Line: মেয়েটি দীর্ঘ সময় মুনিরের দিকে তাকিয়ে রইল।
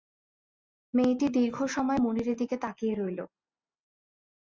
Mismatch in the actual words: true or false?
false